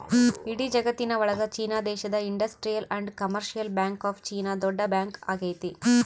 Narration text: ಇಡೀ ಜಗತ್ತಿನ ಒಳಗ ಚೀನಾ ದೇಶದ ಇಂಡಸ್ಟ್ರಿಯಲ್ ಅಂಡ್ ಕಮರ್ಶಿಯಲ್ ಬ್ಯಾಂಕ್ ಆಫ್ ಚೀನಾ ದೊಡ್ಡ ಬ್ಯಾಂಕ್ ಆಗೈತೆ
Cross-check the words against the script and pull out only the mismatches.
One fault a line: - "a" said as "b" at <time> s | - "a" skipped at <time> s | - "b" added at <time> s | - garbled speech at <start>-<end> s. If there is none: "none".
none